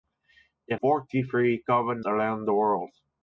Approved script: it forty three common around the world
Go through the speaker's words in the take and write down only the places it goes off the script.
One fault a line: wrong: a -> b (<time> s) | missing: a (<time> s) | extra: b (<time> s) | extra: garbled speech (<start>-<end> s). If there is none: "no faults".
no faults